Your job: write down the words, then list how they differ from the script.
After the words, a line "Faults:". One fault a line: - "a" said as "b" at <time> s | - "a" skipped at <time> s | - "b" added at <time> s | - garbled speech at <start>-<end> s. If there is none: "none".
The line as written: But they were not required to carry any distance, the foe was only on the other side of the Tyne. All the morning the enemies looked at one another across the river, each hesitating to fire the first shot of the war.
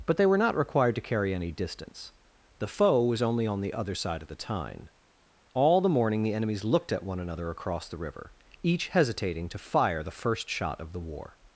But they were not required to carry any distance, the foe was only on the other side of the Tyne. All the morning the enemies looked at one another across the river, each hesitating to fire the first shot of the war.
Faults:
none